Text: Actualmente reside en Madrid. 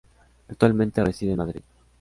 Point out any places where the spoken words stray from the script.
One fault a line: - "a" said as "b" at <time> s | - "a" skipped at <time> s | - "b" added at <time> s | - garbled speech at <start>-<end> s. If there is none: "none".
none